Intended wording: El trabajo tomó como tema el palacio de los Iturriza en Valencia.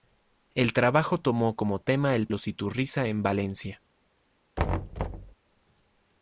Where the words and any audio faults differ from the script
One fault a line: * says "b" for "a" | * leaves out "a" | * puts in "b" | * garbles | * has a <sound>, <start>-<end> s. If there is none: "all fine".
* leaves out "palacio de"
* has a thud, 4.6-5.3 s